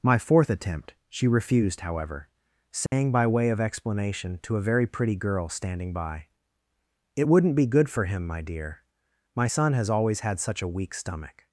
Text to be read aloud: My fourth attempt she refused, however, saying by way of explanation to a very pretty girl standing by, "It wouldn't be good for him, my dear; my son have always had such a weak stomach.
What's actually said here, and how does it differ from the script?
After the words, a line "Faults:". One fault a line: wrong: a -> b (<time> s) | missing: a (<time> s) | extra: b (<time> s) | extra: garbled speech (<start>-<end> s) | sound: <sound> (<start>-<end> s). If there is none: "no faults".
My fourth attempt she refused, however, saying by way of explanation to a very pretty girl standing by, "It wouldn't be good for him, my dear; my son has always had such a weak stomach.
Faults:
sound: dropout (2.9-2.9 s)
wrong: have -> has (9.7 s)